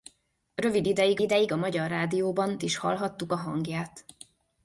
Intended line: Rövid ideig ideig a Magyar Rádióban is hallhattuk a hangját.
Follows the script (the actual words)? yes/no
yes